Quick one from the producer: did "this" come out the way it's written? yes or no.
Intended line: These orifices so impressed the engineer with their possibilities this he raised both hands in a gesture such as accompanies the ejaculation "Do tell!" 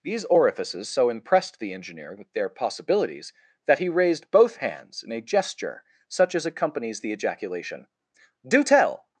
no